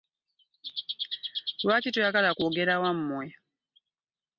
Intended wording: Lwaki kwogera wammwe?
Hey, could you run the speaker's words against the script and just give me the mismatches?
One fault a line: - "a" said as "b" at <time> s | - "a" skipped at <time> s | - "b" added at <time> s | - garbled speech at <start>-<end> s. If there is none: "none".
- "toyagala" added at 1.9 s